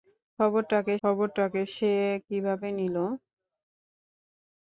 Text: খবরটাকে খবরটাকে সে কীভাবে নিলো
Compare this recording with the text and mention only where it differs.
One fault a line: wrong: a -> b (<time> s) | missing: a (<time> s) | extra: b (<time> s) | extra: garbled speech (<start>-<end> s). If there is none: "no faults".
no faults